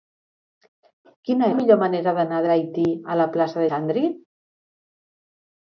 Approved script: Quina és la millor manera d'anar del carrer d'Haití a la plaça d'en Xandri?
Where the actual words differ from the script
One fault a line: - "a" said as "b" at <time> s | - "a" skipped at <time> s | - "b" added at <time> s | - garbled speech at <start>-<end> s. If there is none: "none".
- "és" skipped at 1.5 s
- "del carrer" skipped at 2.4 s
- "d'en" skipped at 3.6 s